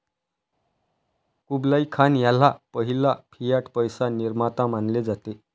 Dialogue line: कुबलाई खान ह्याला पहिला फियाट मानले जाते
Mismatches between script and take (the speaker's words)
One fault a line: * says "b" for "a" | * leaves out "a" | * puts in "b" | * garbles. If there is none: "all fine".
* puts in "पैसा निर्माता"